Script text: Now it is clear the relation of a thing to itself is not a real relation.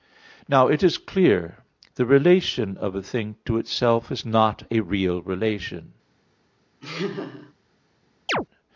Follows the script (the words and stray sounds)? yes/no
no